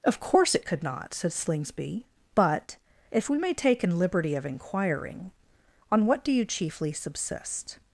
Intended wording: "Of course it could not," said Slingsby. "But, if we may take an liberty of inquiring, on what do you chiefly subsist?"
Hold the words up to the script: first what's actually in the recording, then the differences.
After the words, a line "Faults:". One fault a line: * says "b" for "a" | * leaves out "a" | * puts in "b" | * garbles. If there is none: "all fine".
"Of course it could not," said Slingsby. "But, if we may take an liberty of inquiring, on what do you chiefly subsist?"
Faults:
all fine